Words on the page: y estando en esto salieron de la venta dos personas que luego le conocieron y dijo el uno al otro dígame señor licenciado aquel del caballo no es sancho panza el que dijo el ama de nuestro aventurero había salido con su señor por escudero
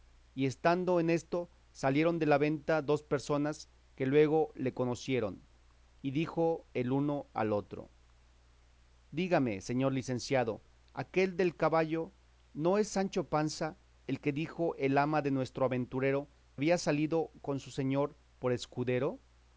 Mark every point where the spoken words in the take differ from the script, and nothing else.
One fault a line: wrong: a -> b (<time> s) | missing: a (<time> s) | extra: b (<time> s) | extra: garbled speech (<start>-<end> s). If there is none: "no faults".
no faults